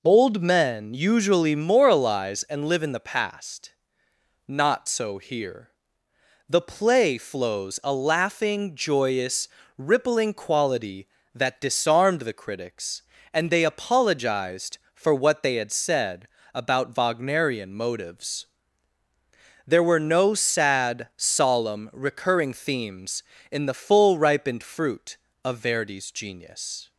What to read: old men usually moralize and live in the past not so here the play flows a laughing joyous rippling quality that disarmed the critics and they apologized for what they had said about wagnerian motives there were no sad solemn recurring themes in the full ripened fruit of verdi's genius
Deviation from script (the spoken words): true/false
false